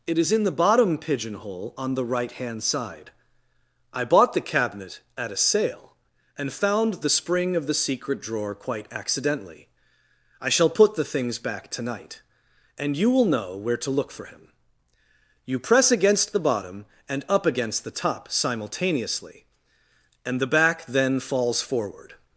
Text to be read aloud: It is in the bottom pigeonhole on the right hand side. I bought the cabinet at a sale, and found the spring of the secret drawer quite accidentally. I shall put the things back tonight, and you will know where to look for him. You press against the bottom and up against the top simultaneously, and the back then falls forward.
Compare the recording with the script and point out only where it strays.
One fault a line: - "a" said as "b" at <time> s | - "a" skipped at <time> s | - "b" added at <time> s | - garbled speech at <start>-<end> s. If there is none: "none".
none